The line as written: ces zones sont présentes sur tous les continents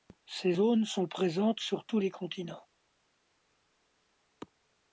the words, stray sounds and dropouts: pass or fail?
pass